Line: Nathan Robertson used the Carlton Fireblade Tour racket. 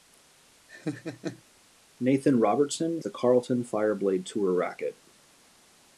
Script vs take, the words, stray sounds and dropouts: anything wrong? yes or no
yes